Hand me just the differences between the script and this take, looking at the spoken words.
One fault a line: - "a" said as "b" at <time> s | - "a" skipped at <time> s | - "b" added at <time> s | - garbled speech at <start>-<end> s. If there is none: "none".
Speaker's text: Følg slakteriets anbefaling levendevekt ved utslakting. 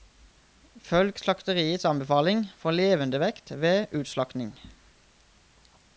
- "for" added at 2.6 s